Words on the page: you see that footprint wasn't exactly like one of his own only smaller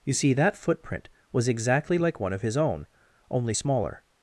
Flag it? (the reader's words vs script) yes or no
yes